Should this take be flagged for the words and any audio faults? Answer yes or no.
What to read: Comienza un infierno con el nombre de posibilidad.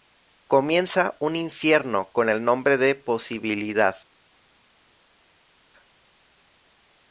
no